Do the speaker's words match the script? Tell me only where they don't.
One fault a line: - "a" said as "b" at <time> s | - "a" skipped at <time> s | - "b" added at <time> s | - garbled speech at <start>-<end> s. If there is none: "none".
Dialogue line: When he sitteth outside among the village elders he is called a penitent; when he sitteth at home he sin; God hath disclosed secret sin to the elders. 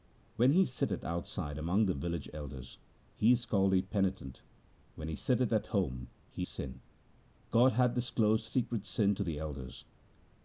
none